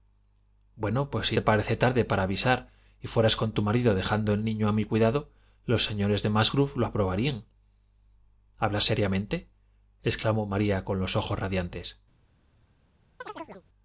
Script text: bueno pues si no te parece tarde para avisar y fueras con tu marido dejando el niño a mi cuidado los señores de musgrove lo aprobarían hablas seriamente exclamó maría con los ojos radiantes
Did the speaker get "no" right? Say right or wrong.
wrong